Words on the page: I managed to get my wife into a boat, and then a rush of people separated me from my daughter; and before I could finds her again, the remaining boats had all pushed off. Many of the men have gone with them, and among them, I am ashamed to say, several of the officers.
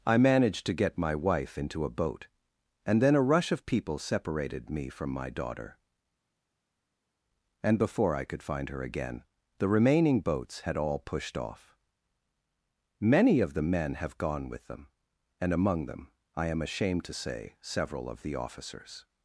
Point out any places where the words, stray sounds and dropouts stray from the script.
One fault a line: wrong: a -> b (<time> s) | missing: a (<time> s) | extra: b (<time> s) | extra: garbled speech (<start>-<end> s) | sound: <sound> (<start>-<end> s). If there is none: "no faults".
wrong: finds -> find (8.4 s)